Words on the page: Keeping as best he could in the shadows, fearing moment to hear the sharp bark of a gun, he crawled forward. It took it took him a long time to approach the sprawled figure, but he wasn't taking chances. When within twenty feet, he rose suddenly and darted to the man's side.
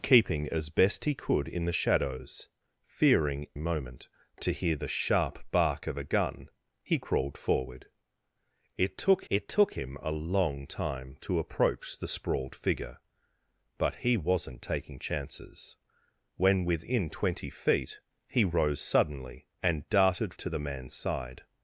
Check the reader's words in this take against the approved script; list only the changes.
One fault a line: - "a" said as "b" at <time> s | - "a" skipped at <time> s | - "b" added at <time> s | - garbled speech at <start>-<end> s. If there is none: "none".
none